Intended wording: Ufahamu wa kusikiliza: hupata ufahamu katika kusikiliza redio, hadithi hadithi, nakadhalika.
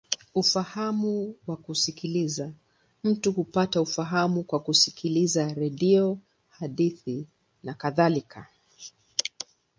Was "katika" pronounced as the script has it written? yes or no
no